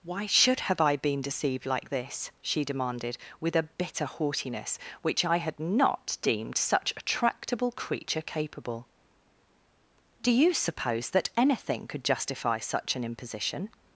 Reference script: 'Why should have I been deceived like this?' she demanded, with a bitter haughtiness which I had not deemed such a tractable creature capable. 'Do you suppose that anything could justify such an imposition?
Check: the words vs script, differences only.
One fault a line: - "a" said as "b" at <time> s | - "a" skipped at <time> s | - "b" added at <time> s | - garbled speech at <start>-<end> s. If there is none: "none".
none